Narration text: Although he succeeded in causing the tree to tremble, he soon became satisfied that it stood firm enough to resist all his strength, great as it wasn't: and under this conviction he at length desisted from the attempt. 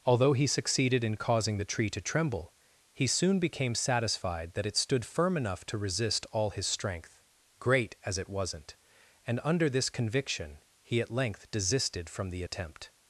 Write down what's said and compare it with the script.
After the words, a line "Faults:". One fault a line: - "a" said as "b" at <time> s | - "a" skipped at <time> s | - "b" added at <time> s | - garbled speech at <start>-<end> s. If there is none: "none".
Although he succeeded in causing the tree to tremble, he soon became satisfied that it stood firm enough to resist all his strength, great as it wasn't: and under this conviction he at length desisted from the attempt.
Faults:
none